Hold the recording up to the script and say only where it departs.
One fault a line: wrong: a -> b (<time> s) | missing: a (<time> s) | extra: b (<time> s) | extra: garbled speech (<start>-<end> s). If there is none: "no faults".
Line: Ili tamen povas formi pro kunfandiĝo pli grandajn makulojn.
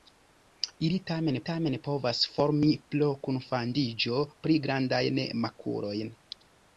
extra: tamen (1.5 s)